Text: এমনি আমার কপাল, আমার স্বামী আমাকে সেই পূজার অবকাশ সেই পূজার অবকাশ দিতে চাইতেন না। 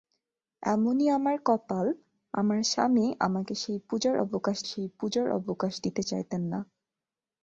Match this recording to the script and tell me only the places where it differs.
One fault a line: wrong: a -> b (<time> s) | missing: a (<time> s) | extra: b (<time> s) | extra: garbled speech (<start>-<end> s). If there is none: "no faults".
no faults